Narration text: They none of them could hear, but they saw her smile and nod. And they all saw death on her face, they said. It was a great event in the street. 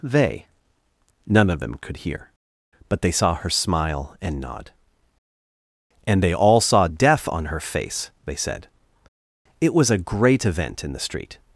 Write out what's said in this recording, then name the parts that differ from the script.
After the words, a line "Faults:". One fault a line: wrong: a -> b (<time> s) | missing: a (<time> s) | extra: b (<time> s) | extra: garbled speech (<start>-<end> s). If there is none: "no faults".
They none of them could hear, but they saw her smile and nod. And they all saw death on her face, they said. It was a great event in the street.
Faults:
no faults